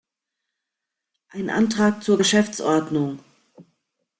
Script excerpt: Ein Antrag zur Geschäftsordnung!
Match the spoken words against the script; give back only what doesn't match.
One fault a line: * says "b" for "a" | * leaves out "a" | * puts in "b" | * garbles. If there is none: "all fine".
all fine